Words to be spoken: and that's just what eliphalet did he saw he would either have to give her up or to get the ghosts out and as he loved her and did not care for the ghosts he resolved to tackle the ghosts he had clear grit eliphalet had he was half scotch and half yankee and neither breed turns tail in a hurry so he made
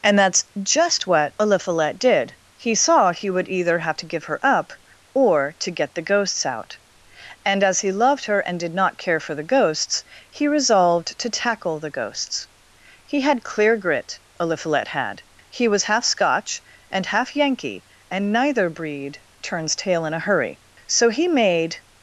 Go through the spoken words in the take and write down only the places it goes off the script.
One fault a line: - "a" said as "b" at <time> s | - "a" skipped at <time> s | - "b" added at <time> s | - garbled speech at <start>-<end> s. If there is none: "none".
none